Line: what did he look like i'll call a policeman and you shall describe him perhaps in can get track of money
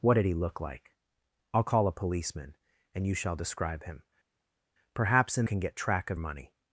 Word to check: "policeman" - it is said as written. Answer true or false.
true